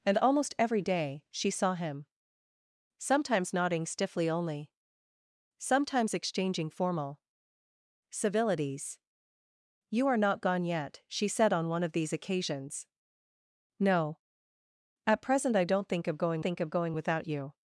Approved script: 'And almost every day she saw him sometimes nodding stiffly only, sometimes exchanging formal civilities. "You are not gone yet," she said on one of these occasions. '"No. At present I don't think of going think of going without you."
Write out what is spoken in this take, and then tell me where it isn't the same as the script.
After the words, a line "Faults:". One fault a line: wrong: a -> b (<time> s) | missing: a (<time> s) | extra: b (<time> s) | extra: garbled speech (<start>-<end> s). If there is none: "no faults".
'And almost every day she saw him sometimes nodding stiffly only, sometimes exchanging formal civilities. "You are not gone yet," she said on one of these occasions. '"No. At present I don't think of going think of going without you."
Faults:
no faults